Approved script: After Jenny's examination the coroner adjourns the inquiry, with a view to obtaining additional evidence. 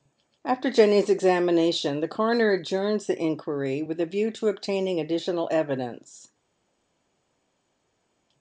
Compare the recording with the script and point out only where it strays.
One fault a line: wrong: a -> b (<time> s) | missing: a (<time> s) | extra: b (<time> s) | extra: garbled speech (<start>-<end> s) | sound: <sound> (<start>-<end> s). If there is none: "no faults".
no faults